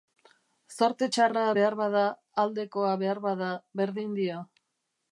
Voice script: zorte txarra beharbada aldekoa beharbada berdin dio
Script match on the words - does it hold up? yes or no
yes